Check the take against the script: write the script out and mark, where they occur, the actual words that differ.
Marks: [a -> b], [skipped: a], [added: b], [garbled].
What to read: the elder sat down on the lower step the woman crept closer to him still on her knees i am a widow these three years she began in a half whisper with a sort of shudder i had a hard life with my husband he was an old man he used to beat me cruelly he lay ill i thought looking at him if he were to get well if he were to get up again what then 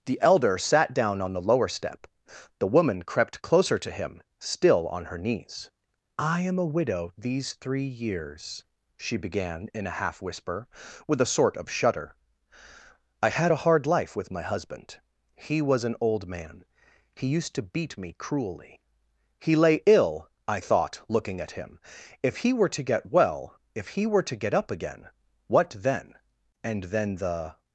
the elder sat down on the lower step the woman crept closer to him still on her knees i am a widow these three years she began in a half whisper with a sort of shudder i had a hard life with my husband he was an old man he used to beat me cruelly he lay ill i thought looking at him if he were to get well if he were to get up again what then [added: and then the]